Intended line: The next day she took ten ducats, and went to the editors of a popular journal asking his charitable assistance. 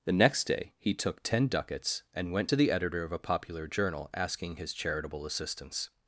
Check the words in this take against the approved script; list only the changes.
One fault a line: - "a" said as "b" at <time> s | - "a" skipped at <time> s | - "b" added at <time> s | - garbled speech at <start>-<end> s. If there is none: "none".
- "she" said as "he" at 0.8 s
- "editors" said as "editor" at 2.7 s